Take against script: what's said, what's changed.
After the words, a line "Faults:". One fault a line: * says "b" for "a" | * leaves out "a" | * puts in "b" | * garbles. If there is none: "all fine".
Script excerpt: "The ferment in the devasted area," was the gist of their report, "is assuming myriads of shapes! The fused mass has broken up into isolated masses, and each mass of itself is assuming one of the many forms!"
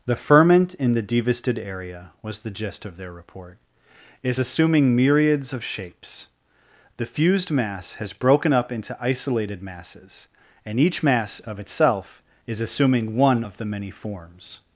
"The ferment in the devasted area," was the gist of their report, "is assuming myriads of shapes! The fused mass has broken up into isolated masses, and each mass of itself is assuming one of the many forms!"
Faults:
all fine